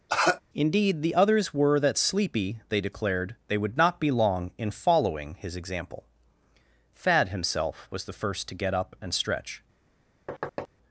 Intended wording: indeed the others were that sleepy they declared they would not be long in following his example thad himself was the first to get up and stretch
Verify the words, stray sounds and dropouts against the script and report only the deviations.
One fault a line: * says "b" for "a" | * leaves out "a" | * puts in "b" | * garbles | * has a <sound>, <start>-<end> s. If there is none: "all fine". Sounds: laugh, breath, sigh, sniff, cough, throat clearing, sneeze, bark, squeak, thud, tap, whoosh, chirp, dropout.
* has a cough, 0.1-0.4 s
* has a thud, 10.3-10.7 s